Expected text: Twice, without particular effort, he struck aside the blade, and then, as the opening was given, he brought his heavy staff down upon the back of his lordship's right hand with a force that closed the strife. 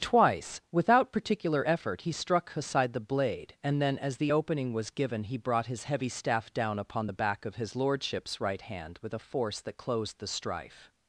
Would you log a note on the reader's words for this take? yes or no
no